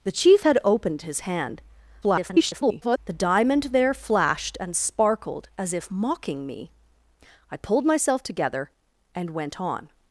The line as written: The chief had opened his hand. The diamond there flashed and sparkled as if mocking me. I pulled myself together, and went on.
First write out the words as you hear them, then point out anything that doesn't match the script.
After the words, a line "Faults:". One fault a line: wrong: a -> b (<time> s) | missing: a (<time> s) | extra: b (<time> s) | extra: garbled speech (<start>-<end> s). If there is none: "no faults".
The chief had opened his hand. [garbled] The diamond there flashed and sparkled as if mocking me. I pulled myself together, and went on.
Faults:
extra: garbled speech (2.0-3.0 s)